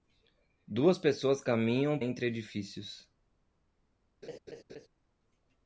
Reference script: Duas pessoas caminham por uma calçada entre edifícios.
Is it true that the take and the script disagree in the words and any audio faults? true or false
true